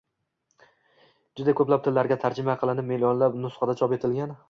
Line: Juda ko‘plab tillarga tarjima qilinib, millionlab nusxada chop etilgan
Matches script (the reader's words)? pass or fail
pass